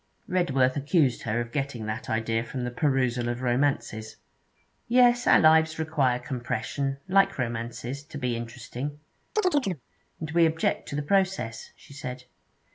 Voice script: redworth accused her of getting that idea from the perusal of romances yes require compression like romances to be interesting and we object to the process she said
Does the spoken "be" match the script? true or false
true